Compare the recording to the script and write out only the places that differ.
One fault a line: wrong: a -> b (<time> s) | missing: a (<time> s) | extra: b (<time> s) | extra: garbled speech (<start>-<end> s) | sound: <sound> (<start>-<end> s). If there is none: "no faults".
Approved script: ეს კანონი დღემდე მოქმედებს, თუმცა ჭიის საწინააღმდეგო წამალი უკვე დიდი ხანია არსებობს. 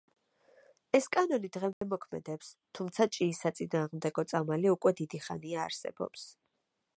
sound: dropout (1.7-1.8 s)